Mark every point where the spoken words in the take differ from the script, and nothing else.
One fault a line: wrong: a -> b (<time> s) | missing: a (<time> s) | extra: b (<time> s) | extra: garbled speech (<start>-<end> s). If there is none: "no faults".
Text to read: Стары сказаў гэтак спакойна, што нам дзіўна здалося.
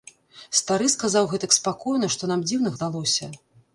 no faults